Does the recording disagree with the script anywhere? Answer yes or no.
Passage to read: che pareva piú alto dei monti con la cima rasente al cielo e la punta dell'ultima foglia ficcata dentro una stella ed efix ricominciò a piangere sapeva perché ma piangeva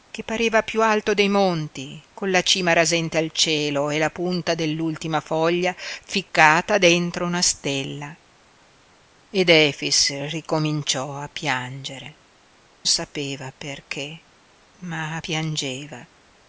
no